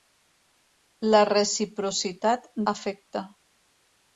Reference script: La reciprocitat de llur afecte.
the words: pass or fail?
fail